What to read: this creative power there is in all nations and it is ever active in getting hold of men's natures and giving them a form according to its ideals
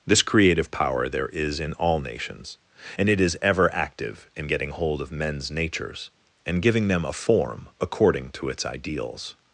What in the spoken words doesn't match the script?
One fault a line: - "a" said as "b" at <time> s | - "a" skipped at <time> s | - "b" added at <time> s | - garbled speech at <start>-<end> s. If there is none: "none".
none